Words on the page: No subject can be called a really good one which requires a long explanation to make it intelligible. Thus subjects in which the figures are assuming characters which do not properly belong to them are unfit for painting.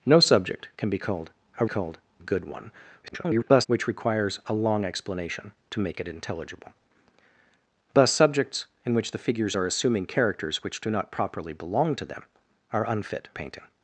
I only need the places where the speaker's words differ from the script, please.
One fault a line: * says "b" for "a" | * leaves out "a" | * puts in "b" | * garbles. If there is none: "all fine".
* says "called" for "really"
* garbles
* leaves out "for"